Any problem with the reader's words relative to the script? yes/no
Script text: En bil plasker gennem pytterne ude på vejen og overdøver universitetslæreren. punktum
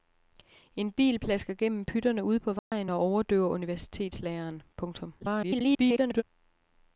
yes